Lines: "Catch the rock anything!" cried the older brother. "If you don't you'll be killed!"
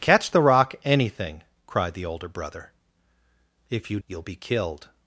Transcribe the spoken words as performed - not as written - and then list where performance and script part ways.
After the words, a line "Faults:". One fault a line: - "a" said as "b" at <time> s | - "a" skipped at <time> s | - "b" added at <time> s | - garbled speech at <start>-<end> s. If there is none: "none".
"Catch the rock anything!" cried the older brother. "If you you'll be killed!"
Faults:
- "don't" skipped at 4.0 s